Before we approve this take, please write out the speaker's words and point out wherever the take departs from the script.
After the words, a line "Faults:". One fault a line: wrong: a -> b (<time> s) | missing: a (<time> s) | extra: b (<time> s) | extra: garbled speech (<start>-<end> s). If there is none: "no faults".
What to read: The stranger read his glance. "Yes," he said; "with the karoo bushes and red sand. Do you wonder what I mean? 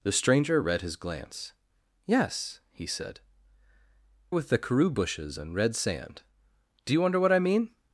The stranger read his glance. "Yes," he said; "with the karoo bushes and red sand. Do you wonder what I mean?
Faults:
no faults